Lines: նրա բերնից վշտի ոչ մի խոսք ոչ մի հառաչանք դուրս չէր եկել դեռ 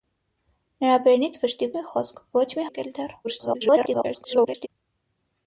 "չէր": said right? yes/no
no